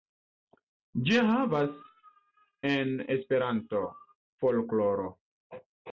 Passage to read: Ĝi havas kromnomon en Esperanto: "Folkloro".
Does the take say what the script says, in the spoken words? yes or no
no